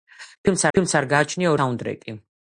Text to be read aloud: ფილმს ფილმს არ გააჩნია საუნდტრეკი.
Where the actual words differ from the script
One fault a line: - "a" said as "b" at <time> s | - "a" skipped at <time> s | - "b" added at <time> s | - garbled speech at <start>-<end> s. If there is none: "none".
none